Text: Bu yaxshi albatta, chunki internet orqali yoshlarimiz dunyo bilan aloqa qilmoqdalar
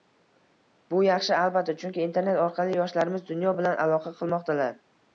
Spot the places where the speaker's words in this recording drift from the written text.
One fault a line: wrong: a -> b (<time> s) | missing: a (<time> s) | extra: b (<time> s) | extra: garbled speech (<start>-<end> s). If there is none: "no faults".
no faults